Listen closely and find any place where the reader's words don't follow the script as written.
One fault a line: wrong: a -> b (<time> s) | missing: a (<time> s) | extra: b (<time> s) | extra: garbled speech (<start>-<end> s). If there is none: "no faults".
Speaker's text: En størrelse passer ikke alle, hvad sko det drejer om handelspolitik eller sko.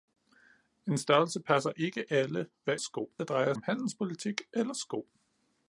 no faults